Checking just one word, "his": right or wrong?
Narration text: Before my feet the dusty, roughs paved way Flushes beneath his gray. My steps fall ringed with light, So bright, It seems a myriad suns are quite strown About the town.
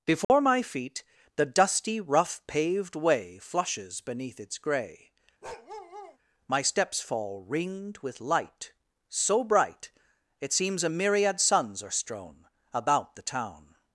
wrong